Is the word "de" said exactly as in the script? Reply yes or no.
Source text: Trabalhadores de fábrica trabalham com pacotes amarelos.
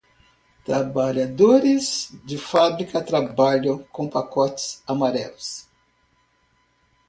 yes